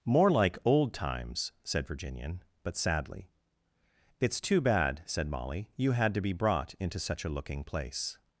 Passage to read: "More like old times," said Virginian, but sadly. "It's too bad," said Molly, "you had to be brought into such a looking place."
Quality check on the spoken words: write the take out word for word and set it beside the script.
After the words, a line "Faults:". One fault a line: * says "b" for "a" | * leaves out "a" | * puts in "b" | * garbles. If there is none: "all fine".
"More like old times," said Virginian, but sadly. "It's too bad," said Molly, "you had to be brought into such a looking place."
Faults:
all fine